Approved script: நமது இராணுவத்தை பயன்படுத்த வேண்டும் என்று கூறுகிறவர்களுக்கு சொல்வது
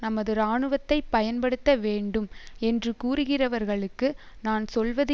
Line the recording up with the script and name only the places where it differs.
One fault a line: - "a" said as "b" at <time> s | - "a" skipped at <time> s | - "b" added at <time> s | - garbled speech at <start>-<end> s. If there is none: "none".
- "நான்" added at 4.4 s